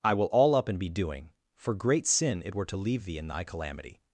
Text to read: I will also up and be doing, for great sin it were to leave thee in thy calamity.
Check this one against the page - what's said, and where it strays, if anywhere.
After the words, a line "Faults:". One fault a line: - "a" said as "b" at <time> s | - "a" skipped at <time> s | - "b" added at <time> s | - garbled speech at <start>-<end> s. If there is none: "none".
I will all up and be doing, for great sin it were to leave thee in thy calamity.
Faults:
- "also" said as "all" at 0.3 s